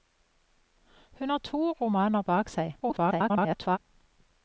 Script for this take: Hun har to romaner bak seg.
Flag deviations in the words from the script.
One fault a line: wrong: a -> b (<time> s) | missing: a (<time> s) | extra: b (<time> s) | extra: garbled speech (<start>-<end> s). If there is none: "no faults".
extra: garbled speech (2.8-3.8 s)